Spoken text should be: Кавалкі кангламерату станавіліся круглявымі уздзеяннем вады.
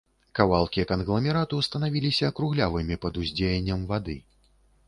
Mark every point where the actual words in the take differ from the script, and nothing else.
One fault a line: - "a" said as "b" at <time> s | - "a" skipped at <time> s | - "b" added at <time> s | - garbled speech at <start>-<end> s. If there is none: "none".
- "пад" added at 3.1 s